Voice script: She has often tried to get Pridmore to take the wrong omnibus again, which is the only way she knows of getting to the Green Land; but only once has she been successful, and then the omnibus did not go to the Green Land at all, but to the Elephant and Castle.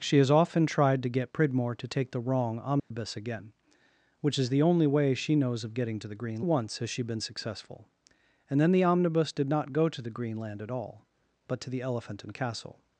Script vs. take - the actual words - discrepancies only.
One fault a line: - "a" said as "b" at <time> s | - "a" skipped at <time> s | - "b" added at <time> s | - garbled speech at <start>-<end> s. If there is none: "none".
- "Land but only" skipped at 6.4 s